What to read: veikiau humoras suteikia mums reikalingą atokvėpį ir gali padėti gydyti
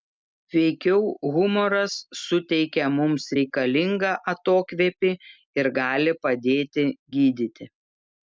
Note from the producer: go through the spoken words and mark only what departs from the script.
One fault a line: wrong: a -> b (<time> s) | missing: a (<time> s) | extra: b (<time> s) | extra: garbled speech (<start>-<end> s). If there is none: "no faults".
no faults